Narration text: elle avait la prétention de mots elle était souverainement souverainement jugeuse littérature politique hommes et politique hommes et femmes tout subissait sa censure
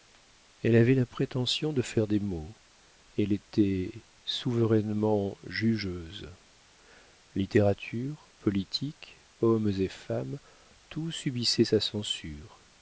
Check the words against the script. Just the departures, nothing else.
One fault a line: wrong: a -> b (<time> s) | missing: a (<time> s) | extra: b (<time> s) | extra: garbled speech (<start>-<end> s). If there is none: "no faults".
extra: faire des (1.8 s)
missing: souverainement (5.4 s)
missing: politique hommes et (9.9 s)